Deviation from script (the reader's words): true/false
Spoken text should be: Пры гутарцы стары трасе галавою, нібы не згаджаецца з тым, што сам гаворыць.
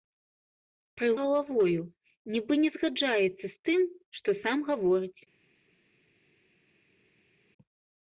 true